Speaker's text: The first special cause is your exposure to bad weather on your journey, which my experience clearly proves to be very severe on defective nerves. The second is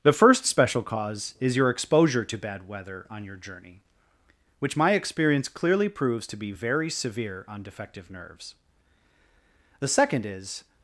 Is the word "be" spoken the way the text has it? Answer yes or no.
yes